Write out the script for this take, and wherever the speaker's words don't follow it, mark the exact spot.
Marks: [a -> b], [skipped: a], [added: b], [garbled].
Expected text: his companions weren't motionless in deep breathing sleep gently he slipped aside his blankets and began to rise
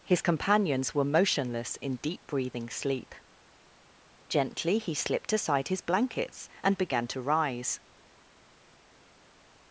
his companions [weren't -> were] motionless in deep breathing sleep gently he slipped aside his blankets and began to rise